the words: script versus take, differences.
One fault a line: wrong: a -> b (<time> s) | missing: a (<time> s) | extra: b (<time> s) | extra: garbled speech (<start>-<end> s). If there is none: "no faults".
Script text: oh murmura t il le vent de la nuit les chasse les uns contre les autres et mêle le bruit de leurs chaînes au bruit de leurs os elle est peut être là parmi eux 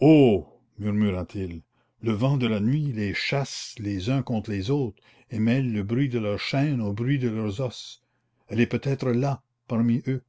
no faults